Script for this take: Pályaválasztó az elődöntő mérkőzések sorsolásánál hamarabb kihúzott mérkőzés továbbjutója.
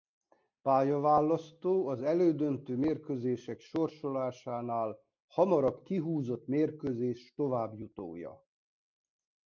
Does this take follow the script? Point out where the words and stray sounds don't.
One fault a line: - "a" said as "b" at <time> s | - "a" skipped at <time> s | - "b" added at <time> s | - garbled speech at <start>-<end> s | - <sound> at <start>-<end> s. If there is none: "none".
none